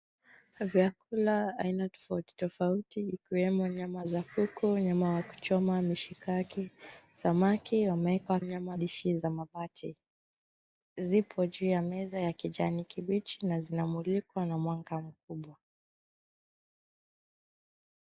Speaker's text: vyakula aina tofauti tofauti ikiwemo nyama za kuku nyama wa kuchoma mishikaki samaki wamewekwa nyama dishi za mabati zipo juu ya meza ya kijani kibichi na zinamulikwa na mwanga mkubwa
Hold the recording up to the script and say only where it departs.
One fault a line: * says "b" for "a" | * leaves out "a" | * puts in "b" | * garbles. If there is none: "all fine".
all fine